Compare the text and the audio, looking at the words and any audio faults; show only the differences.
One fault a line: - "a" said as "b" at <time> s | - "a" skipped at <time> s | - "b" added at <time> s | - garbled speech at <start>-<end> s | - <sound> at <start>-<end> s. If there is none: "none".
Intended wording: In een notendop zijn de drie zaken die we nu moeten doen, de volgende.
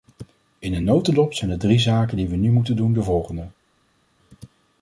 none